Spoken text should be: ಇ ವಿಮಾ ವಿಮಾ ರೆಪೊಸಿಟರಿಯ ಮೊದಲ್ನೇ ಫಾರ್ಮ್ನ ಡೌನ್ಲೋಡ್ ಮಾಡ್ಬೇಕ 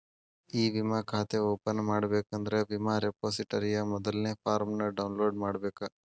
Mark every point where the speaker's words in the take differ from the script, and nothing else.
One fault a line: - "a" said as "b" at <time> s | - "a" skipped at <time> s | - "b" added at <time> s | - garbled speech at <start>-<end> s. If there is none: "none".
- "ಖಾತೆ ಓಪನ್ ಮಾಡಬೇಕಂದ್ರ" added at 1.1 s